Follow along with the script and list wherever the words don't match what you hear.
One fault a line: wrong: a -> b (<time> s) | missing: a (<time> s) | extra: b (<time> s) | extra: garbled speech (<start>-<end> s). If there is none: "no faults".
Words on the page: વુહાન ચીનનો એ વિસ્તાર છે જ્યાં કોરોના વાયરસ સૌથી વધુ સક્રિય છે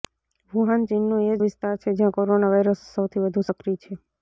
no faults